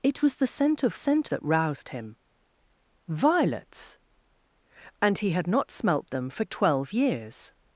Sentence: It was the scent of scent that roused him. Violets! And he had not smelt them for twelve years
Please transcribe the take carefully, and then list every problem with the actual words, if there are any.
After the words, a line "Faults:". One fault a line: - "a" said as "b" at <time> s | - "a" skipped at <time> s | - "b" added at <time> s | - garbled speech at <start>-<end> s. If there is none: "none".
It was the scent of scent that roused him. Violets! And he had not smelt them for twelve years
Faults:
none